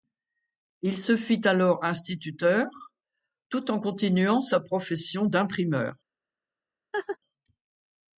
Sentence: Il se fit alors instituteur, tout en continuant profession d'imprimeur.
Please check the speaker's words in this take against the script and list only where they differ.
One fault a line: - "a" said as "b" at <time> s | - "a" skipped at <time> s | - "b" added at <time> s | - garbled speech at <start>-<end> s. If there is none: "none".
- "sa" added at 4.4 s